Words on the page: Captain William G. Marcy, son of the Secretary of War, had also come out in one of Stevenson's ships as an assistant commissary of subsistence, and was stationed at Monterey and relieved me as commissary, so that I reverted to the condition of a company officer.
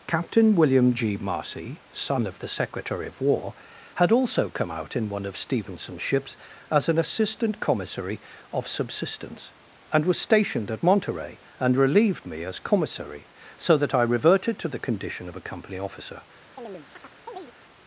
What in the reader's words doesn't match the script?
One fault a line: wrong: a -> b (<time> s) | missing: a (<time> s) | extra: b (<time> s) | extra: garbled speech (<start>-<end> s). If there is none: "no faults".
no faults